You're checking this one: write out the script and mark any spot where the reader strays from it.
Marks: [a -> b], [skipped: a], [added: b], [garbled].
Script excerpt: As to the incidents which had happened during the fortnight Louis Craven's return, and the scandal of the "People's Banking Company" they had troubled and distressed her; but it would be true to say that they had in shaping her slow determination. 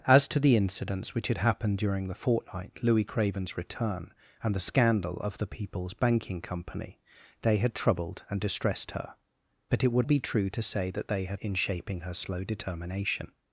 As to the incidents which had happened during the fortnight Louis Craven's return, and the scandal of the "People's Banking Company" they had troubled and distressed her; but it would be true to say that they had in shaping her slow determination.